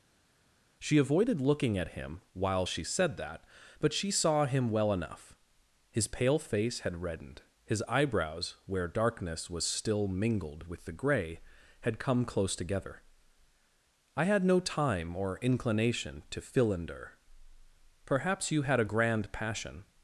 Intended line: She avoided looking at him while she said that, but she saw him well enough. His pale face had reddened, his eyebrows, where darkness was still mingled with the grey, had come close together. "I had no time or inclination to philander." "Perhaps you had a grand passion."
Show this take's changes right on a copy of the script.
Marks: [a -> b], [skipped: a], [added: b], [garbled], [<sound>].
She avoided looking at him while she said that, but she saw him well enough. His pale face had reddened, his eyebrows, where darkness was still mingled with the grey, had come close together. "I had no time or inclination to philander." "Perhaps you had a grand passion."